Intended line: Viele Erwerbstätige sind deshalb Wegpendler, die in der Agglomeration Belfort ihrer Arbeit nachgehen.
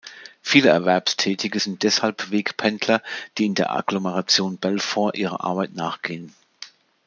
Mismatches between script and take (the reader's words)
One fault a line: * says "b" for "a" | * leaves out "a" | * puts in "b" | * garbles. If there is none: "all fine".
all fine